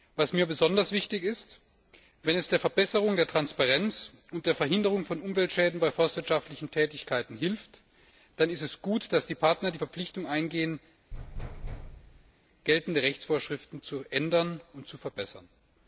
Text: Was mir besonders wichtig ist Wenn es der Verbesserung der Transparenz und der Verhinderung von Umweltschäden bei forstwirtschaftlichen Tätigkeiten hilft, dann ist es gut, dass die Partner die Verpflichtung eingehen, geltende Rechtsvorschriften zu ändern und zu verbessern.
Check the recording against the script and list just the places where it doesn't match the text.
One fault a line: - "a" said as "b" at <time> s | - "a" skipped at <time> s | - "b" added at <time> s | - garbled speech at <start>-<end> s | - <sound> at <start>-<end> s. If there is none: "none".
- thud at 11.1-12.3 s